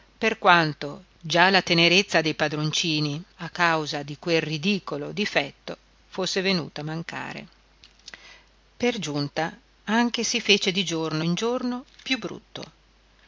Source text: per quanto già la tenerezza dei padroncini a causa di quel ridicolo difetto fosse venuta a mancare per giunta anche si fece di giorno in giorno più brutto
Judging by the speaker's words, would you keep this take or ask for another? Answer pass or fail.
pass